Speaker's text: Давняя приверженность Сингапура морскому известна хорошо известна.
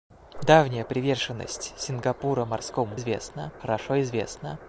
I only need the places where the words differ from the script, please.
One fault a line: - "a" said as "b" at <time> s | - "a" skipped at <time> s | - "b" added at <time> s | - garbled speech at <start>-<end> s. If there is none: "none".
none